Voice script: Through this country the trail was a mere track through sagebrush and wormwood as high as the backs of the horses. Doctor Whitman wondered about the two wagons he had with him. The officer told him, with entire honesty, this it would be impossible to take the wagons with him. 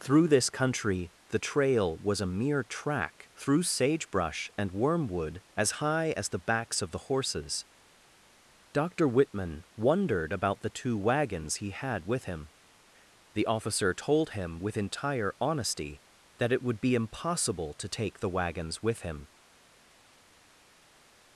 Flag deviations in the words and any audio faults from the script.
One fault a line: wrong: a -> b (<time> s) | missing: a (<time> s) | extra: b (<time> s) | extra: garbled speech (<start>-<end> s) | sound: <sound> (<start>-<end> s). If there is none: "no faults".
wrong: this -> that (16.4 s)